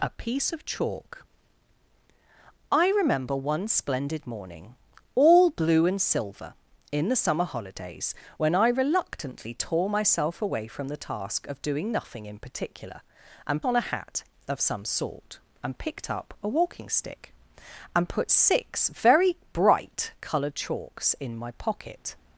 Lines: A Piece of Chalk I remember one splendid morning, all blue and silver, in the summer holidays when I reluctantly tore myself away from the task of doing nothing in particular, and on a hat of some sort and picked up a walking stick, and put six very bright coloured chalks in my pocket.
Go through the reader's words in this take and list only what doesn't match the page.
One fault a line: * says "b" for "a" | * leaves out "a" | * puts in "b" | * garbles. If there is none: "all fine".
all fine